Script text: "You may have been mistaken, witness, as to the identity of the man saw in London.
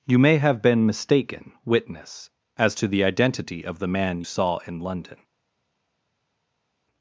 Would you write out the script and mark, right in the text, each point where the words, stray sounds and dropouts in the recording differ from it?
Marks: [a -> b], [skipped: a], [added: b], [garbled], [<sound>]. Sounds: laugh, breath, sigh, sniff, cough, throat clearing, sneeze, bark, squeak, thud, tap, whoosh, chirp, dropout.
"You may have been mistaken, witness, as to the identity of the man saw in London.